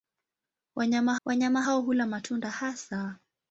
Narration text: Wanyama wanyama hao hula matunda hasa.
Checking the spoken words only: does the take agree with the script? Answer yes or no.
yes